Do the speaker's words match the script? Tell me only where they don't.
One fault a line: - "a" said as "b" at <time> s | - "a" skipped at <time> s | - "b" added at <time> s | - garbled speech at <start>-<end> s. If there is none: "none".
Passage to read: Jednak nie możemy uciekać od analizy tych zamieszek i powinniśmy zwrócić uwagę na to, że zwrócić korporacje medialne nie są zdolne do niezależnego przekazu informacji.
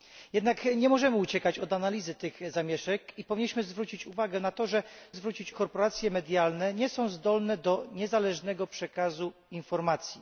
none